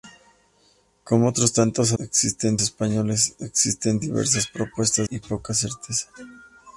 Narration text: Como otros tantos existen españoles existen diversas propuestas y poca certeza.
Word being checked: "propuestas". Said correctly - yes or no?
yes